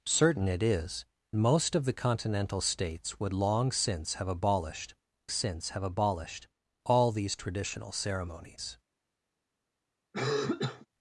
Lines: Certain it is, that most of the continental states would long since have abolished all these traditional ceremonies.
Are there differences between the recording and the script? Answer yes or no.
yes